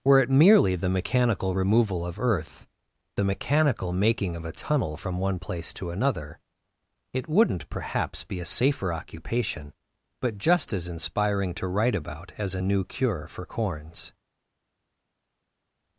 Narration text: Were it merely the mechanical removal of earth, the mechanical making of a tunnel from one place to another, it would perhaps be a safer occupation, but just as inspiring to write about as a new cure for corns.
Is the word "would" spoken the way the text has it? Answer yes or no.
no